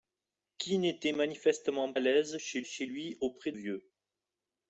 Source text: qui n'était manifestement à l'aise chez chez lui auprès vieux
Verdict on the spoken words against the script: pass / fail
pass